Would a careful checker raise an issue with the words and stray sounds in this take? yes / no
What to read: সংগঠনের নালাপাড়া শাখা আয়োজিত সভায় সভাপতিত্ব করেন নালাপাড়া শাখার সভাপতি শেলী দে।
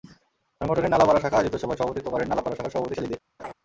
yes